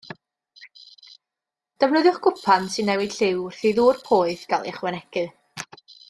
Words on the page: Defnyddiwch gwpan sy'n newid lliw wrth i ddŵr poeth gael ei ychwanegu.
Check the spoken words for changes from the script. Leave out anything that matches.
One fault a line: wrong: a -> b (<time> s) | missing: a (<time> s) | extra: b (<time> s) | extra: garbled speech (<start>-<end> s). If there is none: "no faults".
no faults